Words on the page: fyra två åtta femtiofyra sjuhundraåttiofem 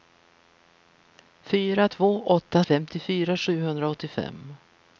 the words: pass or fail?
pass